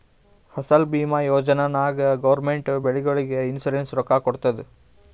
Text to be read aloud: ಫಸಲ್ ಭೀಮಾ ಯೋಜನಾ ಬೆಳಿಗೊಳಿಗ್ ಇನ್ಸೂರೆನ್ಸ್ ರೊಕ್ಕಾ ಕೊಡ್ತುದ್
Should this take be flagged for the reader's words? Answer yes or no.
yes